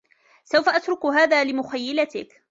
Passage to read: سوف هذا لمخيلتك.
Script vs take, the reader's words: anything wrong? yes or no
yes